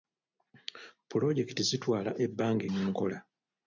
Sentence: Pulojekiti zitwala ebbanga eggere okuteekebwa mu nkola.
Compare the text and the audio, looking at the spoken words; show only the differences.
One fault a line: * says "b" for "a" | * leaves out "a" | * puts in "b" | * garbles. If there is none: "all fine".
* leaves out "eggere okuteekebwa"